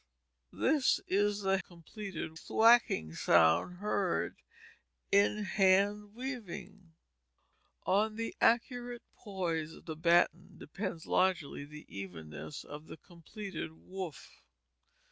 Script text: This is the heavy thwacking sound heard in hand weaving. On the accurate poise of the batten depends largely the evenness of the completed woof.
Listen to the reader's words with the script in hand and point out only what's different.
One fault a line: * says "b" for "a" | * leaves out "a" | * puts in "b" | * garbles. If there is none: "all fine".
* says "completed" for "heavy"